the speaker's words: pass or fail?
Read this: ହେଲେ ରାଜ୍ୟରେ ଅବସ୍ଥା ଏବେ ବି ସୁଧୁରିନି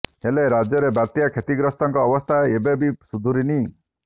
fail